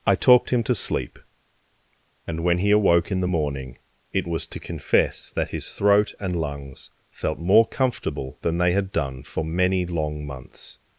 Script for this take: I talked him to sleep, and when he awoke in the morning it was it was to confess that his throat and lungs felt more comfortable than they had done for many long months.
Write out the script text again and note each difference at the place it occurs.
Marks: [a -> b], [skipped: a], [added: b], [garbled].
I talked him to sleep, and when he awoke in the morning it was [skipped: it was] to confess that his throat and lungs felt more comfortable than they had done for many long months.